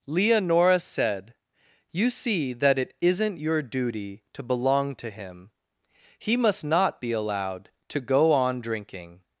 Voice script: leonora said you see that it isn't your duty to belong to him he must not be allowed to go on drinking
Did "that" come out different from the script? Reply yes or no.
no